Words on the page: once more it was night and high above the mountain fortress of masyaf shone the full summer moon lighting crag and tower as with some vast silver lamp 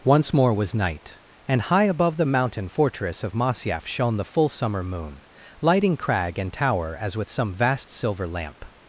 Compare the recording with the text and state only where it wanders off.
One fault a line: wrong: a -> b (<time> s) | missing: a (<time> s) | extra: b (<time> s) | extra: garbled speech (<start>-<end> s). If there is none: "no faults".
missing: it (0.5 s)